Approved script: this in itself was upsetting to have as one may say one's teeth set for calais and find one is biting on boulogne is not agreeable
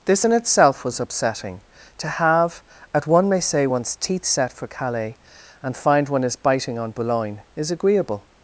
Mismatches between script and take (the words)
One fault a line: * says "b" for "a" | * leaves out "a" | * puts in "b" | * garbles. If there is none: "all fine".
* says "at" for "as"
* leaves out "not"